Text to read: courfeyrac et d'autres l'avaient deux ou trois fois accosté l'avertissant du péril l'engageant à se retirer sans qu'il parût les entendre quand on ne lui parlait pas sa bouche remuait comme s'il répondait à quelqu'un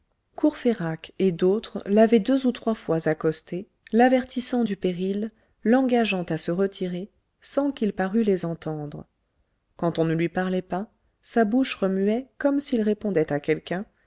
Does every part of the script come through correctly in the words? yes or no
yes